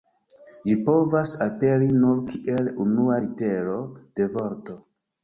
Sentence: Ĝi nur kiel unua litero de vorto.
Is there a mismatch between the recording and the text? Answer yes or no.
yes